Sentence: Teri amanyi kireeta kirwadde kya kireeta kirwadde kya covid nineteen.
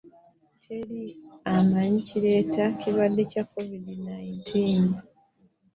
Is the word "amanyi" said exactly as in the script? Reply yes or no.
yes